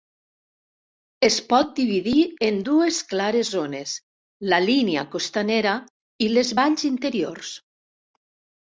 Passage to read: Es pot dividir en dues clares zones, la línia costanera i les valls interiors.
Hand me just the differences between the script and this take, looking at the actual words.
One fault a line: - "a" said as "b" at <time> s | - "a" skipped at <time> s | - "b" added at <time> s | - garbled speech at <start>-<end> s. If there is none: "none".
none